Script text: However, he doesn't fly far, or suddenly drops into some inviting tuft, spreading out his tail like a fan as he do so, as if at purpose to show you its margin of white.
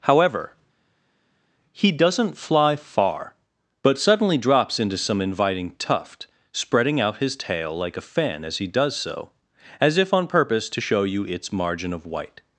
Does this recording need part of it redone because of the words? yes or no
yes